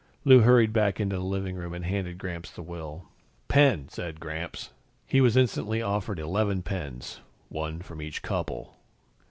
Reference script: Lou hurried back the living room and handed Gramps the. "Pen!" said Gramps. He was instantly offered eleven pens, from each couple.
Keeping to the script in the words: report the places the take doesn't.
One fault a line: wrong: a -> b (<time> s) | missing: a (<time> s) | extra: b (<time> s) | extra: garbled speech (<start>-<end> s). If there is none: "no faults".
extra: into (1.0 s)
extra: will (2.6 s)
extra: one (7.5 s)